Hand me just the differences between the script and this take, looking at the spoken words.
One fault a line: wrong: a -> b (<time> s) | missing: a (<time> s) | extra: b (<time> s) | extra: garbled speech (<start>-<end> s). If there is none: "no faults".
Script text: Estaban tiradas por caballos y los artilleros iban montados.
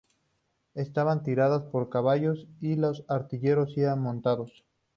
no faults